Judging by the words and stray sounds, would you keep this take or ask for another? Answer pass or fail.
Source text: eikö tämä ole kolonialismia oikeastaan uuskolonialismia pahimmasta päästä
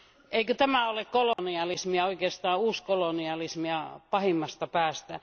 fail